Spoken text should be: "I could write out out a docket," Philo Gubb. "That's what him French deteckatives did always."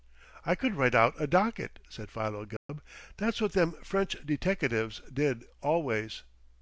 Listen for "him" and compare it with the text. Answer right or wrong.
wrong